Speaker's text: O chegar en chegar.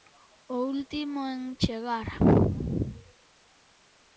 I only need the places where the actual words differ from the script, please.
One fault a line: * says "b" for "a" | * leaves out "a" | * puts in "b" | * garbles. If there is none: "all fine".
* says "último" for "chegar"